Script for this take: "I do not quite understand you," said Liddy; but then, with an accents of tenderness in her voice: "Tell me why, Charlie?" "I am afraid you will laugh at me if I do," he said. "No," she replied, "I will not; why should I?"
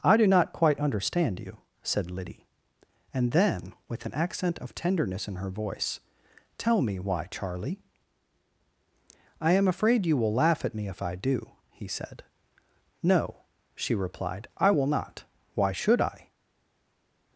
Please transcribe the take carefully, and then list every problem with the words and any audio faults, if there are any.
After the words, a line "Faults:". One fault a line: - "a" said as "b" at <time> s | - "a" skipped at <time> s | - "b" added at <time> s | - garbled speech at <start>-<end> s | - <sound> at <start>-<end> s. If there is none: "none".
"I do not quite understand you," said Liddy; and then, with an accent of tenderness in her voice: "Tell me why, Charlie?" "I am afraid you will laugh at me if I do," he said. "No," she replied, "I will not; why should I?"
Faults:
- "but" said as "and" at 3.1 s
- "accents" said as "accent" at 4.2 s